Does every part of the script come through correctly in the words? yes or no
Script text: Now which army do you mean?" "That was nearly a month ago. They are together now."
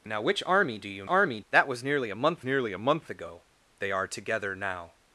no